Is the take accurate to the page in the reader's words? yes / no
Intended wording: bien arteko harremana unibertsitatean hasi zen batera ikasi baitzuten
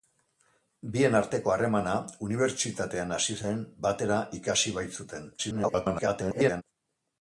no